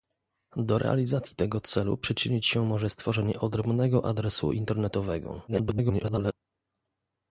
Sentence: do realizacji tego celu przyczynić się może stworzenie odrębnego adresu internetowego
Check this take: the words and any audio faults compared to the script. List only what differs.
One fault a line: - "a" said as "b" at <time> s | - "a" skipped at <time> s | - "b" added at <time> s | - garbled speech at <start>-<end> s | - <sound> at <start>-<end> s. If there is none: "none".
- garbled speech at 5.5-6.3 s